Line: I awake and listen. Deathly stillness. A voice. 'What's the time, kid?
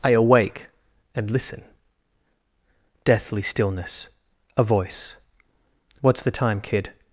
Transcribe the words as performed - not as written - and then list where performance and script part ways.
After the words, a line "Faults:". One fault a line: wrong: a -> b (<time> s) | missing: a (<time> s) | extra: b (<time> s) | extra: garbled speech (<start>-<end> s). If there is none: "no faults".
I awake and listen. Deathly stillness. A voice. 'What's the time, kid?
Faults:
no faults